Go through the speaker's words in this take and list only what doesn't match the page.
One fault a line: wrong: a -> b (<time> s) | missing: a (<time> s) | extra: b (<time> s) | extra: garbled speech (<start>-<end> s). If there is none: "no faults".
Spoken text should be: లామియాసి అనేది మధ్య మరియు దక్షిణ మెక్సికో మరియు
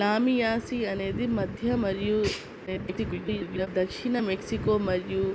extra: garbled speech (2.7-3.7 s)